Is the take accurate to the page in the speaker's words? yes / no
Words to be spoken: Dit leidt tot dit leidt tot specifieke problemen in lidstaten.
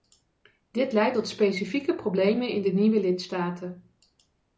no